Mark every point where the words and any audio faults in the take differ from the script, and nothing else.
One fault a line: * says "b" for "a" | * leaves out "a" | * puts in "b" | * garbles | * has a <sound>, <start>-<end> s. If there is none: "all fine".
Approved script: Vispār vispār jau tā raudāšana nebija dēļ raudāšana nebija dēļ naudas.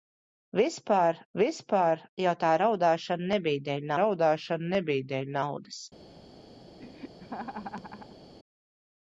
* has a laugh, 6.8-8.2 s